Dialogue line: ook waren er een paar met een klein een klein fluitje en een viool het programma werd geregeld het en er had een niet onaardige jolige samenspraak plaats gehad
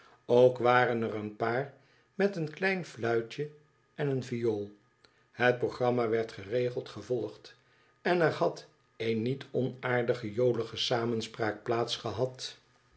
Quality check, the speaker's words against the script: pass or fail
fail